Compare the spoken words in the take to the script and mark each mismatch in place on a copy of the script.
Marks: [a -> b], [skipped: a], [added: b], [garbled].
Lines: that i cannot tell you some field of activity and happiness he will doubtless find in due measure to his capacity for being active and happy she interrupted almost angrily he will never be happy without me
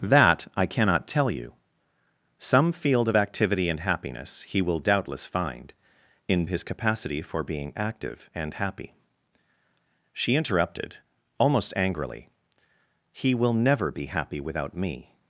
that i cannot tell you some field of activity and happiness he will doubtless find in [skipped: due measure to] his capacity for being active and happy she interrupted almost angrily he will never be happy without me